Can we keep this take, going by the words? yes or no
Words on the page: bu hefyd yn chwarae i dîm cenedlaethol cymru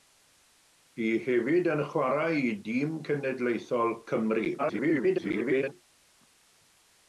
no